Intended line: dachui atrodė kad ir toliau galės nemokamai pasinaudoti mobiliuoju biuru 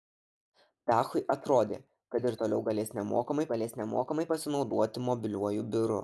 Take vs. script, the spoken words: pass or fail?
fail